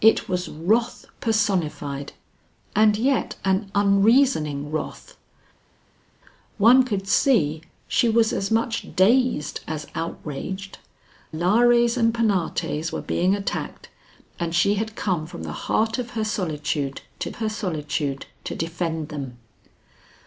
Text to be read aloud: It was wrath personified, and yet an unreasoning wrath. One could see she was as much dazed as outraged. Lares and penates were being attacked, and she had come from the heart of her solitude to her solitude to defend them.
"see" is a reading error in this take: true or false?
false